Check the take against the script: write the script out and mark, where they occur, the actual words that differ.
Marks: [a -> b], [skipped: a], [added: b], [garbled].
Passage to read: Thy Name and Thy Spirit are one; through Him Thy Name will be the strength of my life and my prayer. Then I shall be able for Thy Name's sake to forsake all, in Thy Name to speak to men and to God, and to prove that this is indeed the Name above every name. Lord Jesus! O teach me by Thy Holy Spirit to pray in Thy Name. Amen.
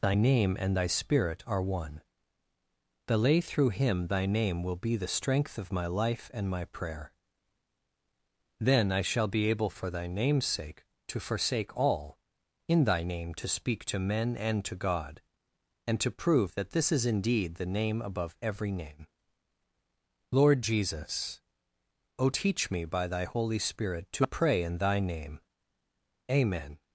Thy Name and Thy Spirit are one; [added: the lay] through Him Thy Name will be the strength of my life and my prayer. Then I shall be able for Thy Name's sake to forsake all, in Thy Name to speak to men and to God, and to prove that this is indeed the Name above every name. Lord Jesus! O teach me by Thy Holy Spirit to pray in Thy Name. Amen.